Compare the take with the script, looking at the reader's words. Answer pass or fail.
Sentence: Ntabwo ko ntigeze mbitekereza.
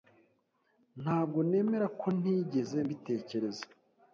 fail